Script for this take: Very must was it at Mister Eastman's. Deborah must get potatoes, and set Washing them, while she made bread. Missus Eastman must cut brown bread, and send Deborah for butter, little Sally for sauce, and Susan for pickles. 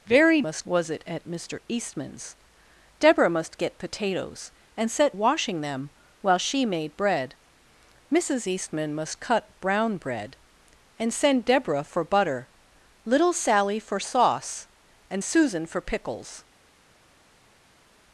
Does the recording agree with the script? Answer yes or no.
yes